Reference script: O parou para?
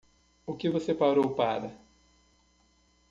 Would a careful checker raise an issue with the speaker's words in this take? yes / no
yes